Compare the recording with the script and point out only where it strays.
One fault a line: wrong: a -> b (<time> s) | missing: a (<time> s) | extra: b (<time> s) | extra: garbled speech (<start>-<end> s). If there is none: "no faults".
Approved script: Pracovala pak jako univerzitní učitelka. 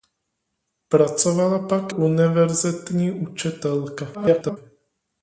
missing: jako (1.9 s)
extra: garbled speech (4.1-4.6 s)